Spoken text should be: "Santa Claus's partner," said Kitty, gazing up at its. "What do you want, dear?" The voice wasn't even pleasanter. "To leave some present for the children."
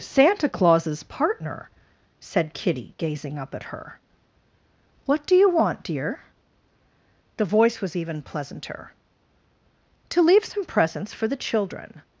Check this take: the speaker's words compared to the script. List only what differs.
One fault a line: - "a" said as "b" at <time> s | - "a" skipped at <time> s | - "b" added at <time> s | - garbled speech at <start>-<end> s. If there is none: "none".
- "its" said as "her" at 3.6 s
- "wasn't" said as "was" at 7.8 s
- "present" said as "presents" at 10.7 s